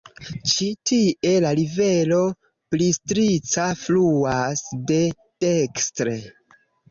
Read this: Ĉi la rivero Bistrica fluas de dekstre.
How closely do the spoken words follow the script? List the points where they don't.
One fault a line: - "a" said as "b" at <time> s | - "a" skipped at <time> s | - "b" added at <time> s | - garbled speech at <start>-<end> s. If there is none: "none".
- "tie" added at 0.9 s